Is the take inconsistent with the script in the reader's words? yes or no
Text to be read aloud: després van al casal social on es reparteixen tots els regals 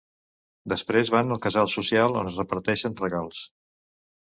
yes